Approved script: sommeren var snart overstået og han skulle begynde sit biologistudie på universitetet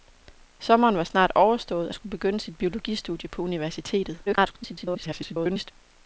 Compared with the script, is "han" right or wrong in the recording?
wrong